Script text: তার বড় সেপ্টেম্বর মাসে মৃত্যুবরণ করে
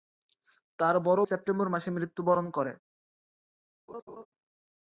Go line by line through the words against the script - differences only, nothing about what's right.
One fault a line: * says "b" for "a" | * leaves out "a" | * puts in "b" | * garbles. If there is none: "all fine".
all fine